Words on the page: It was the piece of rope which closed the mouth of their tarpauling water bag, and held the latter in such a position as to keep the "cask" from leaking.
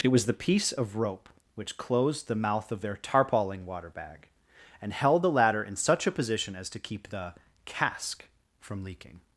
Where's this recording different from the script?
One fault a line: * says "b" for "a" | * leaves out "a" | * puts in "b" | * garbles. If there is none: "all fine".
all fine